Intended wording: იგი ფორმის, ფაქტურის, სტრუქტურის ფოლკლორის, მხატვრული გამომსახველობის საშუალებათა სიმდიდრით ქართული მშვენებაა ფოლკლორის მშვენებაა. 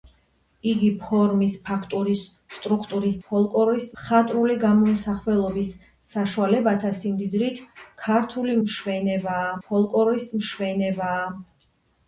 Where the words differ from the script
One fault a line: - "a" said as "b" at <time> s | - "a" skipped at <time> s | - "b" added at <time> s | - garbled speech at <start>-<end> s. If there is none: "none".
none